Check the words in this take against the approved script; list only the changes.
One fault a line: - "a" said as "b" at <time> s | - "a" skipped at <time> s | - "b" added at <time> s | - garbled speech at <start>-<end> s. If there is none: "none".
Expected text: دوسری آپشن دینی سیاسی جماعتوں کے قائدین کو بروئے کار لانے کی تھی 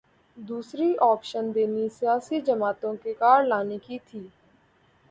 - "قائدین کو بروئے" skipped at 3.1 s